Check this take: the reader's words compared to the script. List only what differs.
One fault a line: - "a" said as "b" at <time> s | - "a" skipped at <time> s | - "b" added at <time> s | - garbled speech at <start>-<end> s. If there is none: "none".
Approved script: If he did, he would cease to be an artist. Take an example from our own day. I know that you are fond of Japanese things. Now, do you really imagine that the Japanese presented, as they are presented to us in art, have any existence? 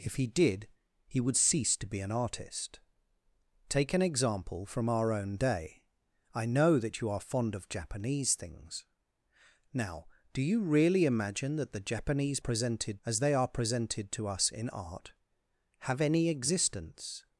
none